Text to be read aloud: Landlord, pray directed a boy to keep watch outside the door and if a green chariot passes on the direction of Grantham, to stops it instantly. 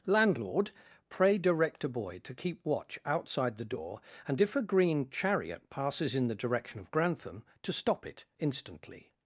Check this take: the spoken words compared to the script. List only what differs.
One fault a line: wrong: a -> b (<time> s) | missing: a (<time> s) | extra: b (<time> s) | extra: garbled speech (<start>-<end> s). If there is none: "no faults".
wrong: directed -> direct (1.4 s)
wrong: on -> in (6.2 s)
wrong: stops -> stop (7.7 s)